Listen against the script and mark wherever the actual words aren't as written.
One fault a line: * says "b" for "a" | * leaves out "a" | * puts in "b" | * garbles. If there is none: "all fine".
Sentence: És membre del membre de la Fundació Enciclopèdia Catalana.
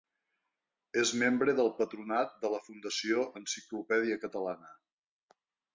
* says "patronat" for "membre"